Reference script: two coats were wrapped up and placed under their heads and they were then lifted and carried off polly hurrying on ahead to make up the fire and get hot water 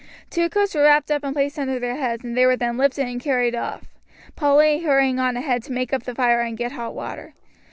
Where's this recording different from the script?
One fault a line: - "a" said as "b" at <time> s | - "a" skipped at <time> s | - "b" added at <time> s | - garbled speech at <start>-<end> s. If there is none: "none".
none